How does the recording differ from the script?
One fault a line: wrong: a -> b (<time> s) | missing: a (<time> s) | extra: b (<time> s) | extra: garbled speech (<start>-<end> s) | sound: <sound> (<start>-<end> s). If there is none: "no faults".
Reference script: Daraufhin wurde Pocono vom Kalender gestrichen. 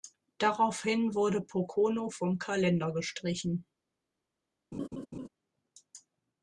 sound: laugh (4.7-5.3 s)